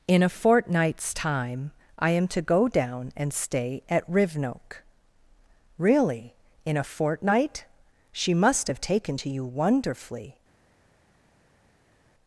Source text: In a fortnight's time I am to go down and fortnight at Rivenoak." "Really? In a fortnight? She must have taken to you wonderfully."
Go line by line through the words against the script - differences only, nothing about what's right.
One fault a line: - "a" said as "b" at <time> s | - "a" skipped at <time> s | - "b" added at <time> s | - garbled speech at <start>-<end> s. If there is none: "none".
- "fortnight" said as "stay" at 3.3 s